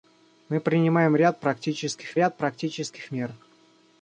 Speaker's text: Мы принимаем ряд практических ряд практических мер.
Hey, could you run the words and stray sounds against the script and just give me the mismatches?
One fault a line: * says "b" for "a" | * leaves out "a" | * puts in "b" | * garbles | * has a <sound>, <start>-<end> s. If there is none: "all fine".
all fine